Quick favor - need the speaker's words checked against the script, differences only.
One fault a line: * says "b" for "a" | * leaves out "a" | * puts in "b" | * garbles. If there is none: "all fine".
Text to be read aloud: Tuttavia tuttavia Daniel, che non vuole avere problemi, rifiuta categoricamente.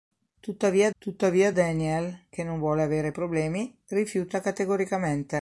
all fine